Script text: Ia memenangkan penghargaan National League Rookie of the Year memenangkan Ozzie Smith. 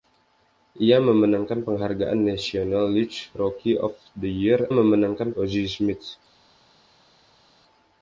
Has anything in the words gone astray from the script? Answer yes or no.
no